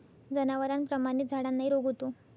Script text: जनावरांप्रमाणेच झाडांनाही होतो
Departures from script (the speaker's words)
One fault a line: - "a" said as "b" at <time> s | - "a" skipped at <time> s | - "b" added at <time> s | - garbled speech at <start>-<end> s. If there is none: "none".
- "रोग" added at 1.7 s